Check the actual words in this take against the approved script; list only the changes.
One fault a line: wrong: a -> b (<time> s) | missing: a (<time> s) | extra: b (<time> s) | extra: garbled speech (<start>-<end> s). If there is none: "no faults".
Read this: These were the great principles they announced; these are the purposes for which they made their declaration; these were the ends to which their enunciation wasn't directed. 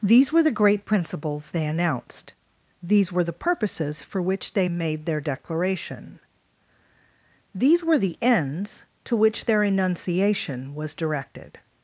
wrong: are -> were (3.1 s)
wrong: wasn't -> was (10.7 s)